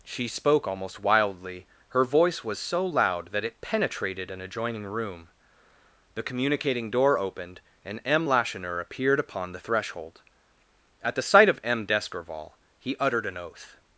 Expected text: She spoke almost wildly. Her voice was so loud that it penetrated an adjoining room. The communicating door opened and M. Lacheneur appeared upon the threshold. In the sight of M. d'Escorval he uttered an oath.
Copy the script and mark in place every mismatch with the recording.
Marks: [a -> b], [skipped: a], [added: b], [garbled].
She spoke almost wildly. Her voice was so loud that it penetrated an adjoining room. The communicating door opened and M. Lacheneur appeared upon the threshold. [In -> At] the sight of M. d'Escorval he uttered an oath.